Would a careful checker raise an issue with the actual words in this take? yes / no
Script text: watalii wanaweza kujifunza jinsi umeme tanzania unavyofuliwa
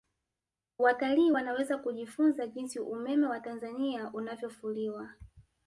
yes